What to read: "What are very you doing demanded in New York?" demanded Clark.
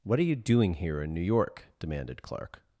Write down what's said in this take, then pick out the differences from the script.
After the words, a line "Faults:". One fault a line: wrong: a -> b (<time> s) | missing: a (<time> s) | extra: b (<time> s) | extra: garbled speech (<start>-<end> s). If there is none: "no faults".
"What are you doing here in New York?" demanded Clark.
Faults:
missing: very (0.2 s)
wrong: demanded -> here (0.8 s)